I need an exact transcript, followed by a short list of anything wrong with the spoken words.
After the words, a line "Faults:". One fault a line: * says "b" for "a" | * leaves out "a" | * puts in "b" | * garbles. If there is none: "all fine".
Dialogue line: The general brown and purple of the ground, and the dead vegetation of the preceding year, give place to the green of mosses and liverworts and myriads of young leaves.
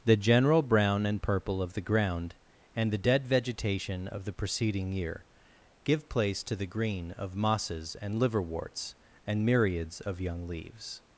The general brown and purple of the ground, and the dead vegetation of the preceding year, give place to the green of mosses and liverworts and myriads of young leaves.
Faults:
all fine